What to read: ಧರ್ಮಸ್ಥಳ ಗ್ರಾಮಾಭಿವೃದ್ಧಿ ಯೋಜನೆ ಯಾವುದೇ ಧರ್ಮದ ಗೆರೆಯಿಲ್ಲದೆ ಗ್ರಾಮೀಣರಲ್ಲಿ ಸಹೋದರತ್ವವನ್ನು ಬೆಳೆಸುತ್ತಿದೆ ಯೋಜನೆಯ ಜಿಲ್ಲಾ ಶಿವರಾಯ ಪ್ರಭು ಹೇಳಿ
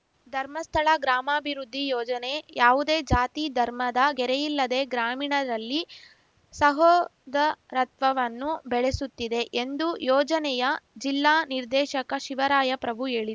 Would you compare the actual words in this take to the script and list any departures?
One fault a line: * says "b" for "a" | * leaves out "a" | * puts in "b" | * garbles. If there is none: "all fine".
* puts in "ಜಾತಿ"
* puts in "ಎಂದು"
* puts in "ನಿರ್ದೇಶಕ"